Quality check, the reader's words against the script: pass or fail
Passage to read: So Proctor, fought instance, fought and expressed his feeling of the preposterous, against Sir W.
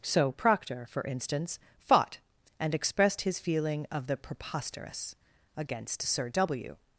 fail